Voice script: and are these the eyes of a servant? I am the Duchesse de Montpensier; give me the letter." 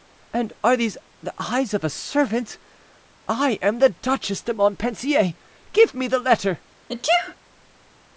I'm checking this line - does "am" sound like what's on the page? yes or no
yes